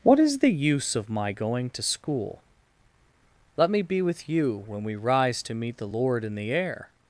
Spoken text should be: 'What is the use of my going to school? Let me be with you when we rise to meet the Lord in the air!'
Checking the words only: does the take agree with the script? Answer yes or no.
yes